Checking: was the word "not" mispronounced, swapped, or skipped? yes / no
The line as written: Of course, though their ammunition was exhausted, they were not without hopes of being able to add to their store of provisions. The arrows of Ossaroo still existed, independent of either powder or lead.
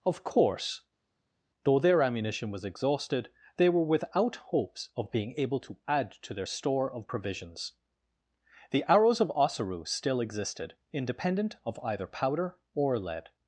yes